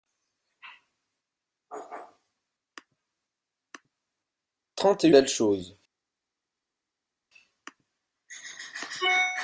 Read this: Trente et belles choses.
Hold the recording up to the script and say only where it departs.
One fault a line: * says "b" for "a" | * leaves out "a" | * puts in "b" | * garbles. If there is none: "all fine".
all fine